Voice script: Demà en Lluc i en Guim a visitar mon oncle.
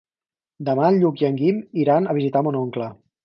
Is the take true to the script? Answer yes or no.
no